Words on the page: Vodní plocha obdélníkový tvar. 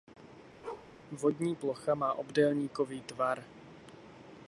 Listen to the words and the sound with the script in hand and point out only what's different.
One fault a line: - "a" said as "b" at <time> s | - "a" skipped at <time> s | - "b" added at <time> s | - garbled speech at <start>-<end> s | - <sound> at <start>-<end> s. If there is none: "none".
- bark at 0.6-0.9 s
- "má" added at 2.0 s